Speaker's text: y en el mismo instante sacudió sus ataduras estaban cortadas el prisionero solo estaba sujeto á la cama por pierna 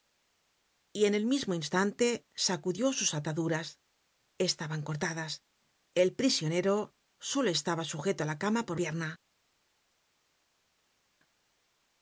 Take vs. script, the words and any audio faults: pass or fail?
pass